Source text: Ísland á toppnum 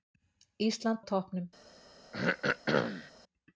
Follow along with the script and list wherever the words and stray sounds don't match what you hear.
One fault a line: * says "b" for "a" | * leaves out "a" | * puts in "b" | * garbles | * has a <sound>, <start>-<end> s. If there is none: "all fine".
* has a throat clearing, 2.1-3.1 s